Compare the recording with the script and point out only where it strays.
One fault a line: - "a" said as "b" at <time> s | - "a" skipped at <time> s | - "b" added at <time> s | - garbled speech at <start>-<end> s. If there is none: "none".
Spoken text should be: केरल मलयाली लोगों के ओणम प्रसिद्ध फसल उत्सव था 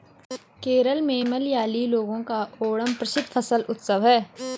- "में" added at 1.0 s
- "के" said as "का" at 2.2 s
- "था" said as "है" at 4.1 s